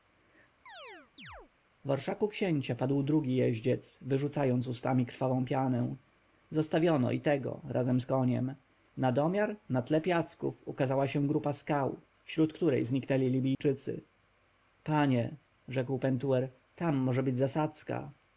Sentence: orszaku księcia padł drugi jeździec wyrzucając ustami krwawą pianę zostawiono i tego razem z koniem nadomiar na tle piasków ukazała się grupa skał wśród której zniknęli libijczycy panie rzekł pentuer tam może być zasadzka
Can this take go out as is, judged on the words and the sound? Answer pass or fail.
fail